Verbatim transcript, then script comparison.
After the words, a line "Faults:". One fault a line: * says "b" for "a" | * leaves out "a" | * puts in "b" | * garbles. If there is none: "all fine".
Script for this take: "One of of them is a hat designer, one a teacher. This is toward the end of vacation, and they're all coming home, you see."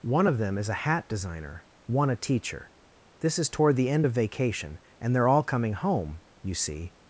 "One of them is a hat designer, one a teacher. This is toward the end of vacation, and they're all coming home, you see."
Faults:
* leaves out "of"